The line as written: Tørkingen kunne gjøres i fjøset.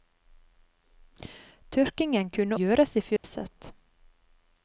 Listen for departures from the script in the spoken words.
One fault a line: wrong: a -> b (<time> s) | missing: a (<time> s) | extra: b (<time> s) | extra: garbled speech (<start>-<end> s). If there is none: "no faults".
no faults